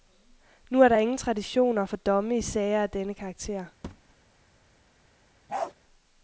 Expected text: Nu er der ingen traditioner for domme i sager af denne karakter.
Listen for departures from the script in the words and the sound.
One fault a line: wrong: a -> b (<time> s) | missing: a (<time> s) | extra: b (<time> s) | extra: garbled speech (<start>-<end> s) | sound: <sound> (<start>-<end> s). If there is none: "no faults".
sound: thud (3.8-4.2 s)
sound: bark (5.5-5.7 s)